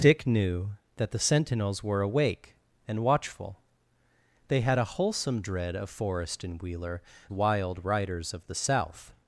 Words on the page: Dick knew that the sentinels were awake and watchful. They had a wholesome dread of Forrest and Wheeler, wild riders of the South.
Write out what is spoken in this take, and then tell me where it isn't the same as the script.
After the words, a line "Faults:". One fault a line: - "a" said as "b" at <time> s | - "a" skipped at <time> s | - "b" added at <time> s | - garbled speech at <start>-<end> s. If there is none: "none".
Dick knew that the sentinels were awake and watchful. They had a wholesome dread of Forrest and Wheeler, wild riders of the South.
Faults:
none